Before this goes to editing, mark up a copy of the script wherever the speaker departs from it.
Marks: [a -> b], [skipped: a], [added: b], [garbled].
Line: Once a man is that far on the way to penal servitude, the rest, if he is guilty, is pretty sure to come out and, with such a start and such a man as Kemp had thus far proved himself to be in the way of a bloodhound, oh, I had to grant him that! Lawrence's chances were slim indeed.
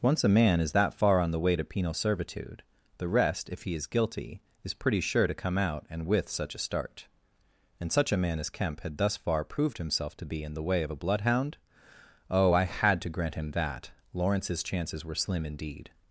Once a man is that far on the way to penal servitude, the rest, if he is guilty, is pretty sure to come out and, with such a start and such a man as Kemp had thus far proved himself to be in the way of a bloodhound, oh, I had to grant him that! Lawrence's chances were slim indeed.